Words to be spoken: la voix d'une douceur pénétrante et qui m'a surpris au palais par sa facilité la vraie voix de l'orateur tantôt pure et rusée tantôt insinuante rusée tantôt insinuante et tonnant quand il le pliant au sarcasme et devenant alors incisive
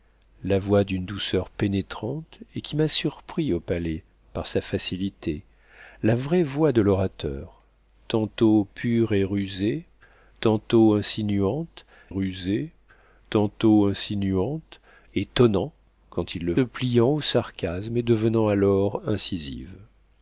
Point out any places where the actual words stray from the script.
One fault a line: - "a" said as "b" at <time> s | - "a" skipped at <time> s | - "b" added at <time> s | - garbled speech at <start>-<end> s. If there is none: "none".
none